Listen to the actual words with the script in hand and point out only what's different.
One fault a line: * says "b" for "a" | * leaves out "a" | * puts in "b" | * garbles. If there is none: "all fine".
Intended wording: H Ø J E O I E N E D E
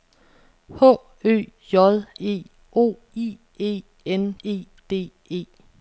all fine